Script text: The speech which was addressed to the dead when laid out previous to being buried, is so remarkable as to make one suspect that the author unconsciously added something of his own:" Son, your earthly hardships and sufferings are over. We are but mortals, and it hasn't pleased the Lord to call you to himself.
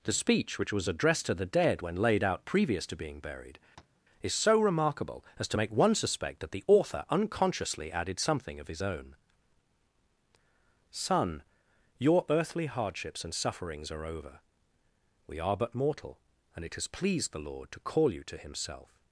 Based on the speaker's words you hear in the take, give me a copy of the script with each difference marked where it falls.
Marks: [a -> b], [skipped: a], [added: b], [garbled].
The speech which was addressed to the dead when laid out previous to being buried, is so remarkable as to make one suspect that the author unconsciously added something of his own:" Son, your earthly hardships and sufferings are over. We are but [mortals, -> mortal] and it [hasn't -> has] pleased the Lord to call you to himself.